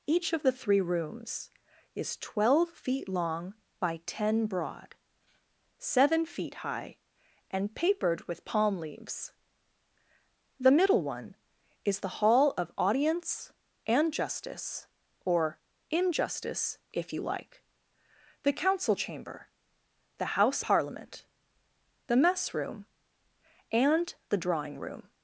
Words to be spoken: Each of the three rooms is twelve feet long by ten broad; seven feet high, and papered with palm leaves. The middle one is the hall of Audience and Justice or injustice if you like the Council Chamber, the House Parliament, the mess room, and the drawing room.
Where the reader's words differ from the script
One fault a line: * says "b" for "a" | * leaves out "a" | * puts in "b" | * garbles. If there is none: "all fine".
all fine